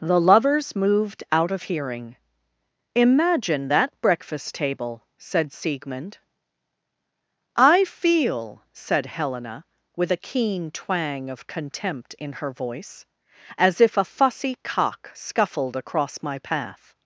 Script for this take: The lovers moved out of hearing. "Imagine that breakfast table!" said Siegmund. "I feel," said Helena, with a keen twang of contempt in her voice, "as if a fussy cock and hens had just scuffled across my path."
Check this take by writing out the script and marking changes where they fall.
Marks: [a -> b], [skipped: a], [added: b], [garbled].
The lovers moved out of hearing. "Imagine that breakfast table!" said Siegmund. "I feel," said Helena, with a keen twang of contempt in her voice, "as if a fussy cock [skipped: and hens had just] scuffled across my path."